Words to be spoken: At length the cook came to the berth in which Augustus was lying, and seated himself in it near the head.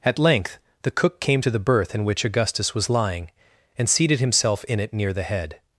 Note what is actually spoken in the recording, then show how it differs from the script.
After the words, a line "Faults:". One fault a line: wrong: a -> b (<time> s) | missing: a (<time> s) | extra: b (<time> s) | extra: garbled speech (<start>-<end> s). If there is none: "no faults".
At length the cook came to the berth in which Augustus was lying, and seated himself in it near the head.
Faults:
no faults